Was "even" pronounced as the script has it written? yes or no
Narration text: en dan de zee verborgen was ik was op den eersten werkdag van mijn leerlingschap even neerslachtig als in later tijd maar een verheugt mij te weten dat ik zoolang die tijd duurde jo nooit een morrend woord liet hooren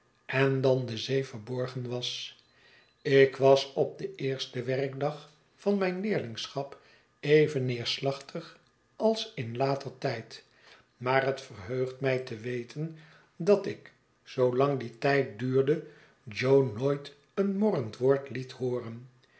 yes